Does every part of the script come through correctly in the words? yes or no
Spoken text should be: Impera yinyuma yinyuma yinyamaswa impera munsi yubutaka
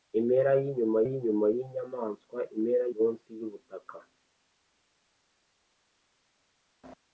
yes